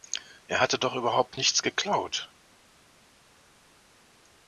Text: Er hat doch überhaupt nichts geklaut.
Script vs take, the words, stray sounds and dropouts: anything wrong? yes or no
yes